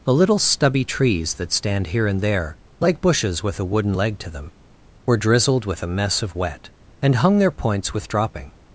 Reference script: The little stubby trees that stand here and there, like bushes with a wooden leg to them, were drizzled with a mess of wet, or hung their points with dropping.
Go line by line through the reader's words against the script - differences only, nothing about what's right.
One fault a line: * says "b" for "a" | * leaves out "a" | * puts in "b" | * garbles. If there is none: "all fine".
* says "and" for "or"